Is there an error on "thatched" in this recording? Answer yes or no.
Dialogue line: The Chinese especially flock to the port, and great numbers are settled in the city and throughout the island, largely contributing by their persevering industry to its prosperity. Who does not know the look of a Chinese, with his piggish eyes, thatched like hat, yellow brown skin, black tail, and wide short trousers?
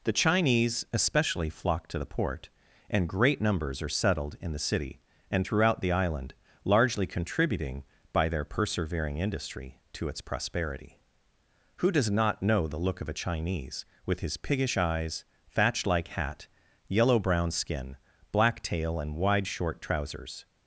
yes